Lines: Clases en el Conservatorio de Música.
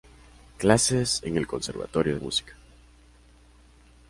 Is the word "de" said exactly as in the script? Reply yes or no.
no